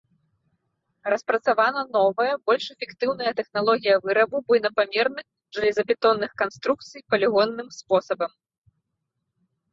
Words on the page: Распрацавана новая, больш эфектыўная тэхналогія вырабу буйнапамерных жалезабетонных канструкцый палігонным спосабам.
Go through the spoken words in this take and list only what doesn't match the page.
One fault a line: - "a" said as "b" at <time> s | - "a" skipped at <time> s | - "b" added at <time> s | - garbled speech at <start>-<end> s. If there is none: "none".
none